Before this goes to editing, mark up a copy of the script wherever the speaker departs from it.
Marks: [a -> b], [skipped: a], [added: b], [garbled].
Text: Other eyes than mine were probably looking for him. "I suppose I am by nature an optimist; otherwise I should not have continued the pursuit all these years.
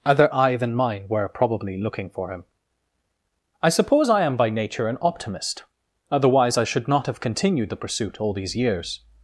Other [eyes -> eye] than mine were probably looking for him. "I suppose I am by nature an optimist; otherwise I should not have continued the pursuit all these years.